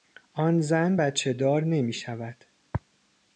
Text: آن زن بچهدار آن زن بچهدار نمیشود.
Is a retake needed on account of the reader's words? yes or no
yes